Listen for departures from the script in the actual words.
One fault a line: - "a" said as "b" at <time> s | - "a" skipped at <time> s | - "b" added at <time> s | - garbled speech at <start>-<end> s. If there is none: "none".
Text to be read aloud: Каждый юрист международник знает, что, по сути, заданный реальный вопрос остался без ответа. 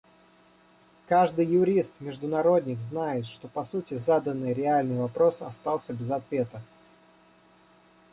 none